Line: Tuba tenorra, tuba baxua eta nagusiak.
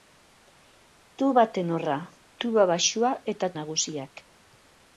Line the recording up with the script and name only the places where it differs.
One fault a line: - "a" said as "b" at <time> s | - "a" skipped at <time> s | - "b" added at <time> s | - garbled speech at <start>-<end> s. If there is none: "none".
none